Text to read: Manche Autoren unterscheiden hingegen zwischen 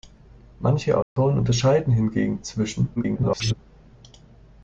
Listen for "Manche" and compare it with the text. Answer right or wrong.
right